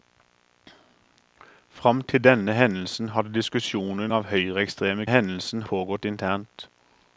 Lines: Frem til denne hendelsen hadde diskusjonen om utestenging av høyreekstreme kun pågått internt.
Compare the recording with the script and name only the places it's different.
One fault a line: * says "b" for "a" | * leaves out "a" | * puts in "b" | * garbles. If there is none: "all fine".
* leaves out "om utestenging"
* says "hendelsen" for "kun"